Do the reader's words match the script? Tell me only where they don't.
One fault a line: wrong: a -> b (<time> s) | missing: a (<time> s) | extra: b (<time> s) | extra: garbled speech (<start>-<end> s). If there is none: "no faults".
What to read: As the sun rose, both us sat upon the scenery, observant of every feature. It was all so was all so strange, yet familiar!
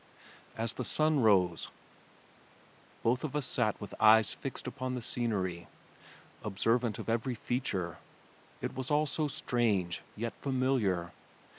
extra: of (3.2 s)
extra: with eyes fixed (3.8 s)
missing: was all so (9.3 s)